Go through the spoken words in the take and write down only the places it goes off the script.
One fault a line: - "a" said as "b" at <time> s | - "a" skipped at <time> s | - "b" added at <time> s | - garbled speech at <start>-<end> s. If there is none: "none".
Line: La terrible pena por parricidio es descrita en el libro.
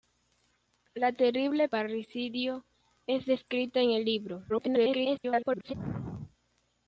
- "pena por" skipped at 1.7 s
- garbled speech at 4.5-5.7 s